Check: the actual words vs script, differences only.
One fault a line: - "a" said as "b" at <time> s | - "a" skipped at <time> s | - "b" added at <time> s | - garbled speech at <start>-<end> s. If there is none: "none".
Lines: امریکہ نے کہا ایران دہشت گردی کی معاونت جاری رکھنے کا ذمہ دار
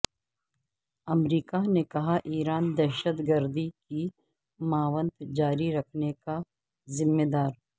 none